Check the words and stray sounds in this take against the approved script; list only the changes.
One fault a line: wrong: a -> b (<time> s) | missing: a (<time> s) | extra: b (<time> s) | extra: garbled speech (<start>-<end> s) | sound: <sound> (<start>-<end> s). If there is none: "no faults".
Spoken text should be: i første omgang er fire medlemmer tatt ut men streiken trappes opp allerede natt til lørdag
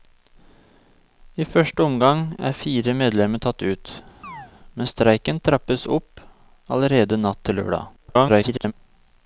sound: chirp (4.2-4.5 s)
extra: garbled speech (8.0-8.7 s)